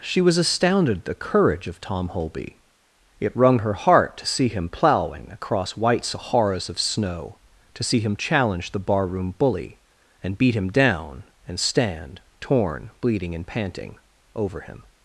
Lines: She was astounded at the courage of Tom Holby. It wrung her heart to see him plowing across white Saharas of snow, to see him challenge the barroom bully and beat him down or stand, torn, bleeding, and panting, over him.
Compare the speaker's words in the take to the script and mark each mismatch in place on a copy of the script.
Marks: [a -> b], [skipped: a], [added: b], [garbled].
She was astounded at the courage of Tom Holby. It wrung her heart to see him plowing across white Saharas of snow, to see him challenge the barroom bully and beat him down [or -> and] stand, torn, bleeding, and panting, over him.